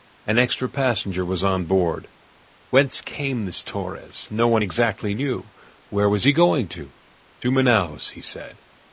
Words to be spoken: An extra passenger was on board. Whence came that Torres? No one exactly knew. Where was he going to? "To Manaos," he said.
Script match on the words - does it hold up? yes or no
no